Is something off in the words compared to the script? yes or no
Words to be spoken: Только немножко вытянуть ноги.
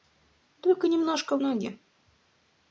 yes